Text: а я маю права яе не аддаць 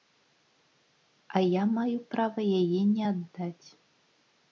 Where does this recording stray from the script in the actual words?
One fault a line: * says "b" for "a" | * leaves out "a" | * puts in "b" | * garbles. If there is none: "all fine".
all fine